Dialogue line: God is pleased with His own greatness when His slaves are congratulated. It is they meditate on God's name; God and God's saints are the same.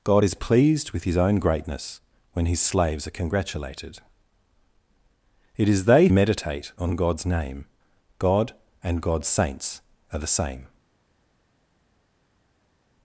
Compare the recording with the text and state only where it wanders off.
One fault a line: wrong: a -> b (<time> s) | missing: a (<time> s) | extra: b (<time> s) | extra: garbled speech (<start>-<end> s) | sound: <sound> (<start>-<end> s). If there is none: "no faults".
no faults